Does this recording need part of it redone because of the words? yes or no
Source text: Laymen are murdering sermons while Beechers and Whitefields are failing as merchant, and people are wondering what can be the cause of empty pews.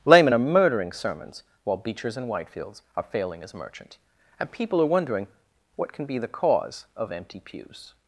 no